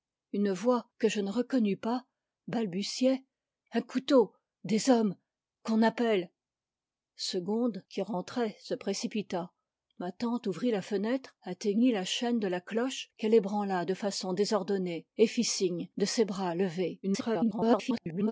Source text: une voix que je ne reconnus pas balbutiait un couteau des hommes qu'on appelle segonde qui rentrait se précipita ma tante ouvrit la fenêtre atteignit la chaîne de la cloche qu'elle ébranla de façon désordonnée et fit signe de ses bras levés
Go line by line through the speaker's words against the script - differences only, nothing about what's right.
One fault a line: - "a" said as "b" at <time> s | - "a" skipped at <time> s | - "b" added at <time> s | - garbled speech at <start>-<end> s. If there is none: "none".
- garbled speech at 17.0-18.3 s